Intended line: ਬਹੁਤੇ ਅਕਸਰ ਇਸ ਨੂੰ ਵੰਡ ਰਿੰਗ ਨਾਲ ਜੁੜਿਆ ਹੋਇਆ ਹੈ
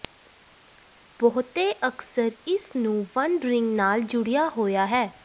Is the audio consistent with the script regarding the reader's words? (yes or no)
yes